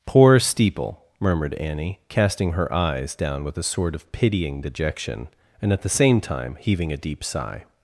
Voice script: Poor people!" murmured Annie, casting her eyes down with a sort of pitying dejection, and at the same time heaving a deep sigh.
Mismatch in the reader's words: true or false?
true